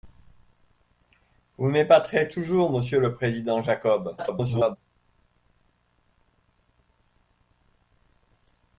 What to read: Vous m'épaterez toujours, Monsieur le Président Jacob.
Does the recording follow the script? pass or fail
fail